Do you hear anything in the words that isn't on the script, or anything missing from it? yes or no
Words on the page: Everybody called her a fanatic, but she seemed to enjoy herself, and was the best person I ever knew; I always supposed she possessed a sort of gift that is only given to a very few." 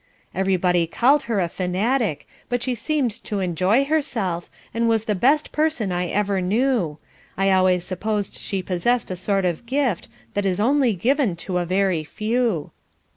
no